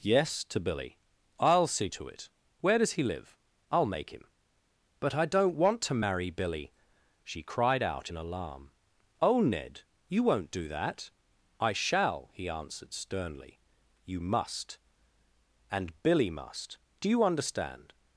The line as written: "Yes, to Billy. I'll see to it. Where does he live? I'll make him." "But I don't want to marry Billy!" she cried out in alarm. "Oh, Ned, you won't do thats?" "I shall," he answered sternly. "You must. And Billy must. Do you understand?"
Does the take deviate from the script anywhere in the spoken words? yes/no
yes